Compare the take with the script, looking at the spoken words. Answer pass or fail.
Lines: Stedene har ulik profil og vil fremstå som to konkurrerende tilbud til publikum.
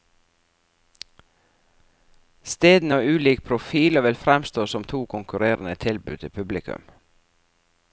pass